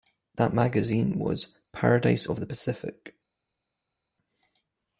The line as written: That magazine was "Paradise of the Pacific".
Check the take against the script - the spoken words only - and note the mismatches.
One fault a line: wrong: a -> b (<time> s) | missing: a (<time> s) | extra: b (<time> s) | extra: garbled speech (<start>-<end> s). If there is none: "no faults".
no faults